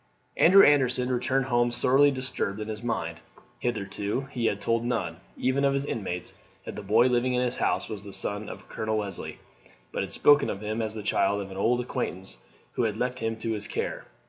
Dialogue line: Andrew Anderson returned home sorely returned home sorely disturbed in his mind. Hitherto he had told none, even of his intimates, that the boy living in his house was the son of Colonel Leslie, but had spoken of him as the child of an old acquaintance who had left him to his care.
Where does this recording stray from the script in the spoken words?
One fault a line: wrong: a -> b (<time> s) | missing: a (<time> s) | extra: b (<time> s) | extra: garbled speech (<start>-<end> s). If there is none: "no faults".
missing: returned home sorely (2.1 s)